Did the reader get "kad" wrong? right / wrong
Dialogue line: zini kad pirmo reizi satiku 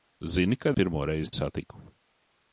right